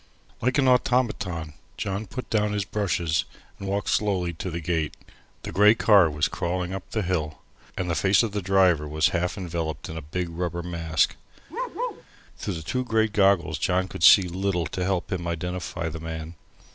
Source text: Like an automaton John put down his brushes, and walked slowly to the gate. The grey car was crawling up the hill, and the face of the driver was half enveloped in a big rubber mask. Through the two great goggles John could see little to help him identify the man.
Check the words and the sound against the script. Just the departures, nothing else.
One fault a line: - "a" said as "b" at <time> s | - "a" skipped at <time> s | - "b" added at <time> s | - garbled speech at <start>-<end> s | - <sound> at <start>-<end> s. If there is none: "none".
- bark at 11.5-12.0 s